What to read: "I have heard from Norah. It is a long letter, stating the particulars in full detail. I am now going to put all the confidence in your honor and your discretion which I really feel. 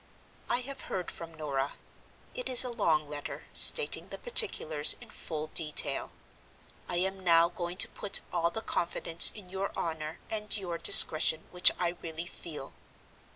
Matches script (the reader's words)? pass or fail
pass